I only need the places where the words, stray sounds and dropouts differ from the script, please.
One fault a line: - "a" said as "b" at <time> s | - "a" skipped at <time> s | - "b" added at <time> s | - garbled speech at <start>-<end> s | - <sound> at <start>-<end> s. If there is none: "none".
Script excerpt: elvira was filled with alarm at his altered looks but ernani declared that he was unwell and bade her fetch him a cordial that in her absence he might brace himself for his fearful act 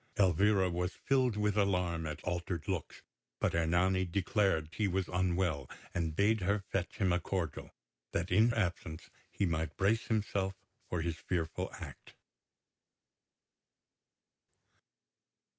- "his" skipped at 2.2 s
- "that" skipped at 4.7 s
- "her" skipped at 8.5 s